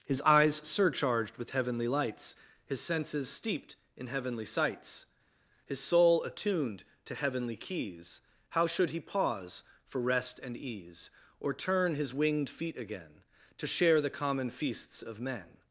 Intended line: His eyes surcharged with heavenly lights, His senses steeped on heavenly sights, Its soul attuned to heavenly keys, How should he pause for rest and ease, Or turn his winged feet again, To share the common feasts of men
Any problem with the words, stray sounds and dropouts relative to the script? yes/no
yes